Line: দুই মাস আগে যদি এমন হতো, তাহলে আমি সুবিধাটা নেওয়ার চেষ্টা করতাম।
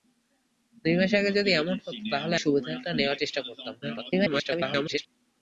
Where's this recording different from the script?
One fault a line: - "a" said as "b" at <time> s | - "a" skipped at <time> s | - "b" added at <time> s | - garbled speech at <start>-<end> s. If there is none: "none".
- "আমি" skipped at 2.4 s
- garbled speech at 3.8-5.1 s